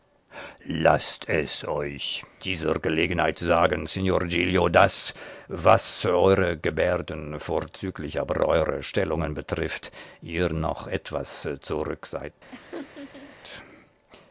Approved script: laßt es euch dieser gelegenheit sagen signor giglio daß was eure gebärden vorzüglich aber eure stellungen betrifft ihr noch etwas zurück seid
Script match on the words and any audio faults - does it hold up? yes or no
no